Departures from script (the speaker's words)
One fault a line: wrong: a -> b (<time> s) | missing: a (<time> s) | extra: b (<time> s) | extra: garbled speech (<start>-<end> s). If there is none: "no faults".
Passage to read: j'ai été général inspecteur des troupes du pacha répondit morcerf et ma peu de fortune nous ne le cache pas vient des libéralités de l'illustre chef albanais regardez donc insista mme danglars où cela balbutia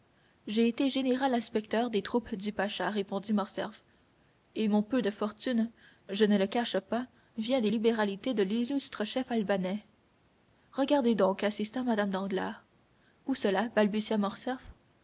wrong: ma -> mon (4.7 s)
wrong: nous -> je (6.1 s)